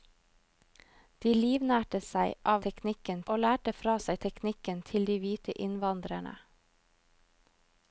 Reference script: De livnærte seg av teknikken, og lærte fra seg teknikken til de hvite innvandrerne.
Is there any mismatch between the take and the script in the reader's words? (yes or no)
no